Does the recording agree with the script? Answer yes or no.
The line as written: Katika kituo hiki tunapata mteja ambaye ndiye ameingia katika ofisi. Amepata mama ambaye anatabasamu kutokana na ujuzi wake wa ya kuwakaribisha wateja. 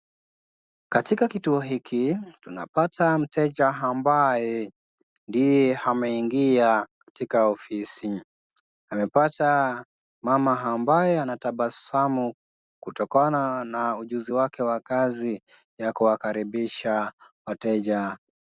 no